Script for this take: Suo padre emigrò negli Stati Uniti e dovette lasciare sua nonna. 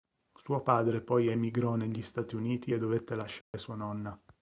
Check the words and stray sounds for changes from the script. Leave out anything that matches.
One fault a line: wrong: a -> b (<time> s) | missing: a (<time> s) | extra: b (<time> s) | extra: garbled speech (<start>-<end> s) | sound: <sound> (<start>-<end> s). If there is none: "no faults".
extra: poi (1.0 s)
sound: dropout (3.4-3.5 s)